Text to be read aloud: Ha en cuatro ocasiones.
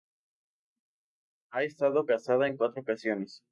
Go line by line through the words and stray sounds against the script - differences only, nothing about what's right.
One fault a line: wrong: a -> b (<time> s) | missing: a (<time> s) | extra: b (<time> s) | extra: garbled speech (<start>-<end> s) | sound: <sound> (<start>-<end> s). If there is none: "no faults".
extra: estado casada (1.6 s)